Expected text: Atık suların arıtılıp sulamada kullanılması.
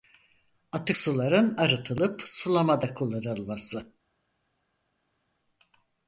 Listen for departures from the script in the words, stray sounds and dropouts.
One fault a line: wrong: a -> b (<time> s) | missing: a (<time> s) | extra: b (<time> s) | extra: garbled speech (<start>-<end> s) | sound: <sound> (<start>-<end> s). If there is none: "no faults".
no faults